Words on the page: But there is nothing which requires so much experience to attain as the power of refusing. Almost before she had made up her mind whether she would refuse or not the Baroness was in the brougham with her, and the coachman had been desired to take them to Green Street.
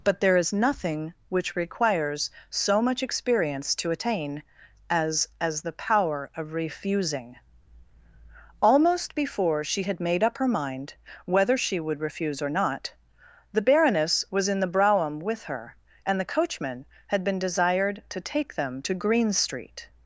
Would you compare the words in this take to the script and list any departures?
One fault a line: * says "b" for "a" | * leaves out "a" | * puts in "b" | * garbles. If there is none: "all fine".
* puts in "as"